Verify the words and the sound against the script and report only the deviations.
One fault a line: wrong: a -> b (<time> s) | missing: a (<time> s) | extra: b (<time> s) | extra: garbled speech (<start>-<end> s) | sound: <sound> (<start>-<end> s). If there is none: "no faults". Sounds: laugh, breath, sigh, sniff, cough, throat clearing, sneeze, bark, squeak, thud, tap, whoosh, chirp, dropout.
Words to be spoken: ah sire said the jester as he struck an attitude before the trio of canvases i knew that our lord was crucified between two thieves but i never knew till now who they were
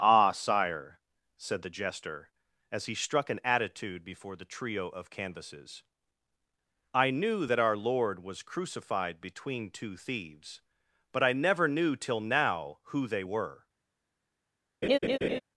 sound: laugh (14.8-15.4 s)